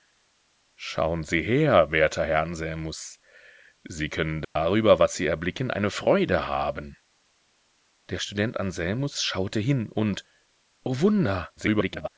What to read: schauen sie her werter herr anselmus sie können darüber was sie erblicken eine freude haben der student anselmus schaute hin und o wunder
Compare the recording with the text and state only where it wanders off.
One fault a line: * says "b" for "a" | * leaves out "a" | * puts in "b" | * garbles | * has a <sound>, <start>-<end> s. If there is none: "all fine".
* has a dropout, 4.4-4.6 s
* garbles